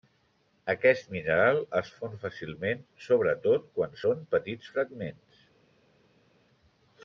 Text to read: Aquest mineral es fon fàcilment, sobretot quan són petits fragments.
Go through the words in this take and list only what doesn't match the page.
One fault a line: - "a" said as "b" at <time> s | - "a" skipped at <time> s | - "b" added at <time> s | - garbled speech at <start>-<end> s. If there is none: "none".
none